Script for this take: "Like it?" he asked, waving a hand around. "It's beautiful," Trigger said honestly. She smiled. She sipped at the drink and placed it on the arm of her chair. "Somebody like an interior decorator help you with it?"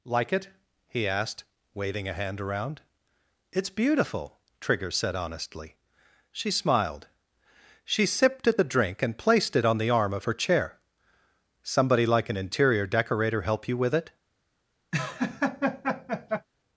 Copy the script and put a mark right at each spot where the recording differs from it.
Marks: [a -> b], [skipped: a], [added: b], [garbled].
"Like it?" he asked, waving a hand around. "It's beautiful," Trigger said honestly. She smiled. She sipped at the drink and placed it on the arm of her chair. "Somebody like an interior decorator help you with it?"